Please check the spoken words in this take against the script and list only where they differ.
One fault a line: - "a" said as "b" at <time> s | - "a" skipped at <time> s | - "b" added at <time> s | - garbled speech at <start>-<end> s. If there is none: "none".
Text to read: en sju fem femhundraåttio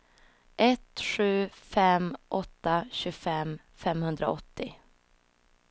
- "en" said as "ett" at 0.6 s
- "åtta tjugofem" added at 2.3 s